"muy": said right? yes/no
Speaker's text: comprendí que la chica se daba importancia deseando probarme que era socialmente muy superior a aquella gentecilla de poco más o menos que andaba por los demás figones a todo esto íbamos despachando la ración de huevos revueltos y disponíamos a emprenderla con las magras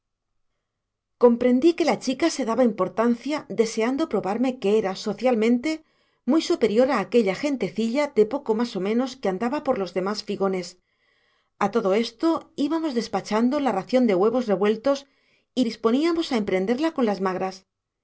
yes